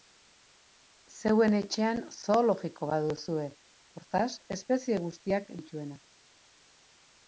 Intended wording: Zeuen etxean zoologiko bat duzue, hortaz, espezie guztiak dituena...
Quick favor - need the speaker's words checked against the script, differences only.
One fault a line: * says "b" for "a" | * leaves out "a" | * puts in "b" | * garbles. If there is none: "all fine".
all fine